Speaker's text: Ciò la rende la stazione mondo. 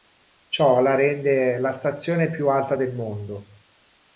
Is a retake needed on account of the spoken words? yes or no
yes